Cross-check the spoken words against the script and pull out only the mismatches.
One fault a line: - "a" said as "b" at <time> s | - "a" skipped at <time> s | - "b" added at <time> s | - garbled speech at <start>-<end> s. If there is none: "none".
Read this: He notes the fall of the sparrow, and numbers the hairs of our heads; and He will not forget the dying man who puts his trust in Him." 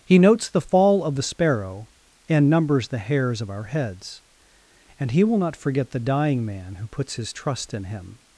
none